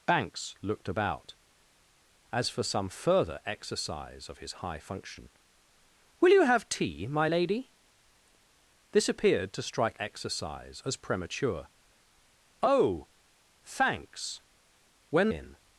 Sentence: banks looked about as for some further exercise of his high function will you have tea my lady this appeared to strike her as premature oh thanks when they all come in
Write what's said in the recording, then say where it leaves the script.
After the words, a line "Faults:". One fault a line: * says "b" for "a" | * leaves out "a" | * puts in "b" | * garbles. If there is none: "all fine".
banks looked about as for some further exercise of his high function will you have tea my lady this appeared to strike exercise as premature oh thanks when in
Faults:
* says "exercise" for "her"
* leaves out "they all come"